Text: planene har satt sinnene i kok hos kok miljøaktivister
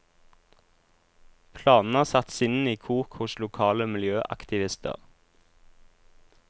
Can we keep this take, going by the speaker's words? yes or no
no